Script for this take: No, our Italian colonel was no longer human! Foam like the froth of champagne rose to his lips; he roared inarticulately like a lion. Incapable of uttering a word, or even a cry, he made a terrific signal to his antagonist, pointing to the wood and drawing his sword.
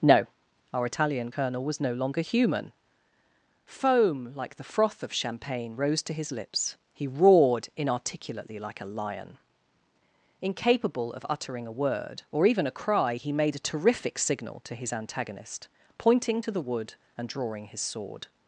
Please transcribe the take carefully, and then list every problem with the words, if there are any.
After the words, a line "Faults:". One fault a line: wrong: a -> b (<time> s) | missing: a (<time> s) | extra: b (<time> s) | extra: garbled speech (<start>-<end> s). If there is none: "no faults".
No, our Italian colonel was no longer human! Foam like the froth of champagne rose to his lips; he roared inarticulately like a lion. Incapable of uttering a word, or even a cry, he made a terrific signal to his antagonist, pointing to the wood and drawing his sword.
Faults:
no faults